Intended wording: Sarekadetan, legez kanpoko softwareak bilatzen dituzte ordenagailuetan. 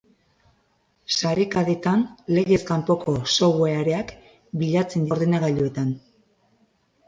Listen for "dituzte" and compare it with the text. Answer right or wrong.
wrong